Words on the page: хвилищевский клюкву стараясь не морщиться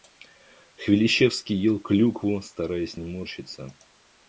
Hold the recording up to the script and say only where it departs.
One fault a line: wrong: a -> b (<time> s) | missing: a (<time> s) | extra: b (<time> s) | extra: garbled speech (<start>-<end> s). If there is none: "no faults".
extra: ел (1.6 s)